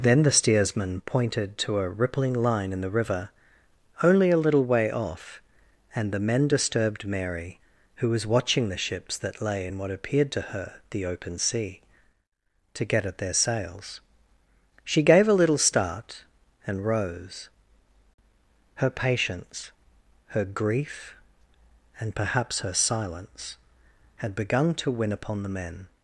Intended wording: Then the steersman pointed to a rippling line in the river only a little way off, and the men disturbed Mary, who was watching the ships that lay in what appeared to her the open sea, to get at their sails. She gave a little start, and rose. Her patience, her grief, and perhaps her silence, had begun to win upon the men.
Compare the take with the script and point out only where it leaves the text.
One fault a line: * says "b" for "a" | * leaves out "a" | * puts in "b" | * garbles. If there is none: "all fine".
all fine